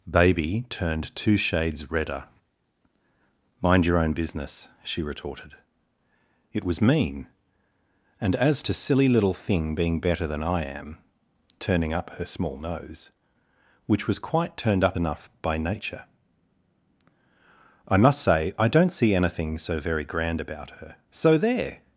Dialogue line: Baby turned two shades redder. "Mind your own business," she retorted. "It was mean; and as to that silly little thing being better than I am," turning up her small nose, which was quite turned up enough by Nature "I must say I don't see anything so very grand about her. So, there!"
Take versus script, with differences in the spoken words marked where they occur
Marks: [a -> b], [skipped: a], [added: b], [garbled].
Baby turned two shades redder. "Mind your own business," she retorted. "It was mean; and as to [skipped: that] silly little thing being better than I am," turning up her small nose, which was quite turned up enough by Nature "I must say I don't see anything so very grand about her. So, there!"